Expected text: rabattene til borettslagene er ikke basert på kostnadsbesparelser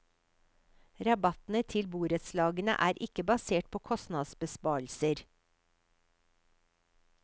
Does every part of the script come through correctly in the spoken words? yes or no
yes